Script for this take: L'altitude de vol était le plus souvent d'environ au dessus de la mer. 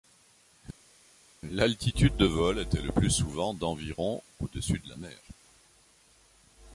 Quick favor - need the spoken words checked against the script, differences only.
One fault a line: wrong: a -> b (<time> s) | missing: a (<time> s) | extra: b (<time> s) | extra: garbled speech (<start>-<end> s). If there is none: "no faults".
no faults